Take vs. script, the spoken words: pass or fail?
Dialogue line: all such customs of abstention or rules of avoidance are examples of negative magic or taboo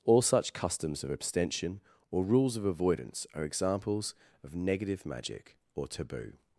pass